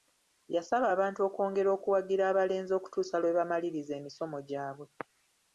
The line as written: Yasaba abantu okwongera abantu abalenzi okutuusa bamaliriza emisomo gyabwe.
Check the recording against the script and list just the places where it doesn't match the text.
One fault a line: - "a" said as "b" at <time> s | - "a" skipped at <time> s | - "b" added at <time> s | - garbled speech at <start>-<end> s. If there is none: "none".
- "abantu" said as "okuwagira" at 1.8 s
- "lwe" added at 3.2 s